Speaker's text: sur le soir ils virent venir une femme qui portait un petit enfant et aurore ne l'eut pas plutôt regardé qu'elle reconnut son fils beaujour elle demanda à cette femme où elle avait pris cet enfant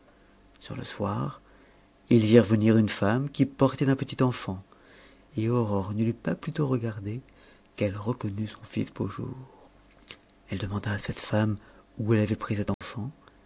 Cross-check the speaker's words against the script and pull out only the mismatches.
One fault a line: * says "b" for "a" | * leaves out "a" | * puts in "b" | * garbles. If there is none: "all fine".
all fine